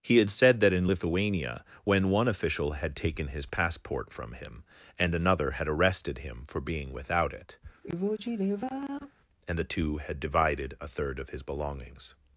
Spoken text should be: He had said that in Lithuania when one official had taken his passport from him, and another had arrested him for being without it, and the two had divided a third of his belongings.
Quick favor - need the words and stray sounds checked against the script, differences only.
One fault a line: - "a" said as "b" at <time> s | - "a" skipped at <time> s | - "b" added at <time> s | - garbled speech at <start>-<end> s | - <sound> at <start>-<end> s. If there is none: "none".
- sigh at 7.8-9.1 s